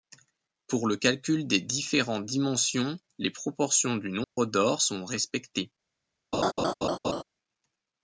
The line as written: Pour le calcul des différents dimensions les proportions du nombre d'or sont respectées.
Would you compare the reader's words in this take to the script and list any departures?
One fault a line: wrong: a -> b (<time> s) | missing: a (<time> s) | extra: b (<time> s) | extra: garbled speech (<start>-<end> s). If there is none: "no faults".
no faults